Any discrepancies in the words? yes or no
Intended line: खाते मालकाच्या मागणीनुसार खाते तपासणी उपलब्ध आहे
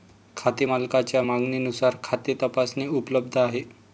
no